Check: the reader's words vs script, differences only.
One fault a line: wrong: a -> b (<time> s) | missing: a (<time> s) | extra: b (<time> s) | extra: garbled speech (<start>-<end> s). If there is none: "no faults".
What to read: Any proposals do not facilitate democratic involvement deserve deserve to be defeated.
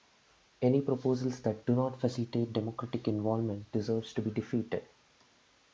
extra: that (1.4 s)
missing: deserve (4.1 s)